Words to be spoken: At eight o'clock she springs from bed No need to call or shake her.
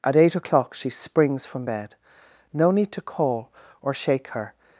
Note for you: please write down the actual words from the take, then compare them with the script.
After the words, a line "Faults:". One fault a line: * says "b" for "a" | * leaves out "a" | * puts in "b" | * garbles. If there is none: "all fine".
At eight o'clock she springs from bed No need to call or shake her.
Faults:
all fine